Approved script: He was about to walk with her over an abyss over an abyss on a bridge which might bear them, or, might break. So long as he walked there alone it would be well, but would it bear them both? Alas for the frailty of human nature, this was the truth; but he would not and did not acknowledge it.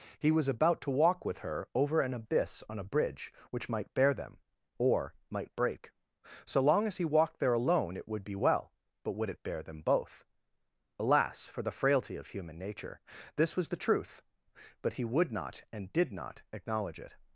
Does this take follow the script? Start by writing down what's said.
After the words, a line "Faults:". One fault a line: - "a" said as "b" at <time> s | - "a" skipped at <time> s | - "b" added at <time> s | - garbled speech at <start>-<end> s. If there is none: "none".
He was about to walk with her over an abyss on a bridge which might bear them, or, might break. So long as he walked there alone it would be well, but would it bear them both? Alas for the frailty of human nature, this was the truth; but he would not and did not acknowledge it.
Faults:
- "over an abyss" skipped at 2.6 s